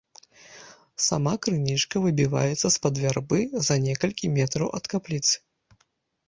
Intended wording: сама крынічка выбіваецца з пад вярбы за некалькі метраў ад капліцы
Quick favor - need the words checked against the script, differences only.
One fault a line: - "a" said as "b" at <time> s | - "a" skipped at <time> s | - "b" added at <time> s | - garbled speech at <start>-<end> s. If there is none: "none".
none